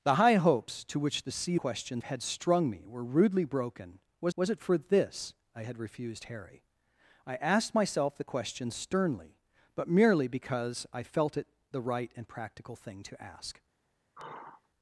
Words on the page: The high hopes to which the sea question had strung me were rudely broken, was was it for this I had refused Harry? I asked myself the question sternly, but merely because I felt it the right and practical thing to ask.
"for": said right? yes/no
yes